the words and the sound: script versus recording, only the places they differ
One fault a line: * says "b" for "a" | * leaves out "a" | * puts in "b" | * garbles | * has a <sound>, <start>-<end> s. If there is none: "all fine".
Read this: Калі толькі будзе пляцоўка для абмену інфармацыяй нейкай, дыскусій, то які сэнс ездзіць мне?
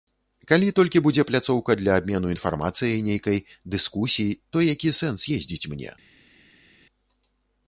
all fine